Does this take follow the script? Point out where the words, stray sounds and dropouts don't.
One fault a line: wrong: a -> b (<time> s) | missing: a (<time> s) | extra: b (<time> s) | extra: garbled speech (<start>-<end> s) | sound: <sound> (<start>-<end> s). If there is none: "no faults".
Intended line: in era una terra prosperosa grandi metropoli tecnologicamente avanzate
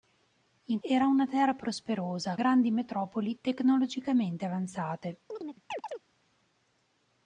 sound: chirp (5.3-6.0 s)